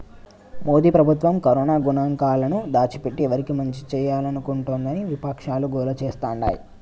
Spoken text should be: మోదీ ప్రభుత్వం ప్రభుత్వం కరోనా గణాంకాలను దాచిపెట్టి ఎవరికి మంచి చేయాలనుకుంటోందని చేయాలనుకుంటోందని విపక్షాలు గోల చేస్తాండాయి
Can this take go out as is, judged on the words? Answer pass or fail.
fail